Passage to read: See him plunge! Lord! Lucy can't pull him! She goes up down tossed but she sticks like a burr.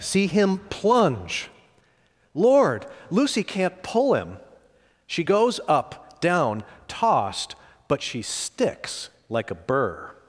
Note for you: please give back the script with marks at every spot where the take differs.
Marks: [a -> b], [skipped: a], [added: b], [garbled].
See him plunge! Lord! Lucy can't pull him! She goes up down tossed but she sticks like a burr.